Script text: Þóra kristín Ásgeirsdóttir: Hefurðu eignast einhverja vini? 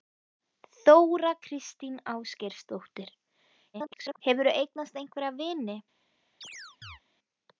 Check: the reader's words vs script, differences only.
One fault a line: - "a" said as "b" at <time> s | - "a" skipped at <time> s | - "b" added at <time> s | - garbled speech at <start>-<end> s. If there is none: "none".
- garbled speech at 3.7-4.2 s